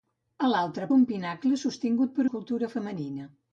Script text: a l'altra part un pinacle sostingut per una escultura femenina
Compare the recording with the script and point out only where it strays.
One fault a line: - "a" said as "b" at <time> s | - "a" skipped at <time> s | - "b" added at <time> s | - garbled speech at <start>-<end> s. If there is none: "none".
- "part" skipped at 0.9 s
- "una" skipped at 2.3 s